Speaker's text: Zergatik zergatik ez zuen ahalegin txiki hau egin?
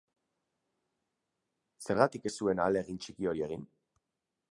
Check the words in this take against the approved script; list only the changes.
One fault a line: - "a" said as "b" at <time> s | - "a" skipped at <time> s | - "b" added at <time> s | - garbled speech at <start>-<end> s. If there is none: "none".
- "zergatik" skipped at 2.2 s
- "hau" said as "hori" at 3.3 s